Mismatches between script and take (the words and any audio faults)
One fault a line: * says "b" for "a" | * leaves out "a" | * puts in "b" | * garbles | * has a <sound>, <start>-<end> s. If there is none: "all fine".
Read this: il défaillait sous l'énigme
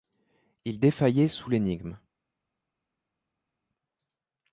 all fine